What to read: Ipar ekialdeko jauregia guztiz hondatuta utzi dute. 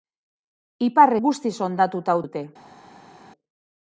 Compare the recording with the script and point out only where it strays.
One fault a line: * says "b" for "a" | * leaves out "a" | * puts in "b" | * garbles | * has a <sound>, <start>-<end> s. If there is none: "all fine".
* leaves out "ekialdeko jauregia"
* leaves out "utzi"